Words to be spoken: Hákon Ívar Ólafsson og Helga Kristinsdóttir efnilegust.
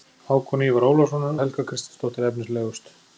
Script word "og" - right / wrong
right